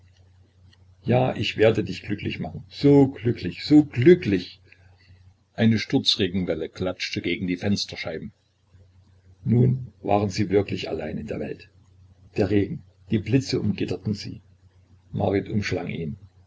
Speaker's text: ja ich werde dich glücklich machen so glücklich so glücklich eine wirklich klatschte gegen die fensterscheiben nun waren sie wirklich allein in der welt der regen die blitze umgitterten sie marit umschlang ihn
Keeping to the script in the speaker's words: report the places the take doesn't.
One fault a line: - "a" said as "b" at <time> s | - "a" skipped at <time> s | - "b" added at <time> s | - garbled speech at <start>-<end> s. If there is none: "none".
- "wirklich" said as "sturzregenwelle" at 5.8 s